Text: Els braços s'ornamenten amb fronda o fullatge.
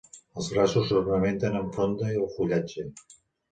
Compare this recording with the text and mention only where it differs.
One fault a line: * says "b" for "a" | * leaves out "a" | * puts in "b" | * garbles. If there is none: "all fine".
all fine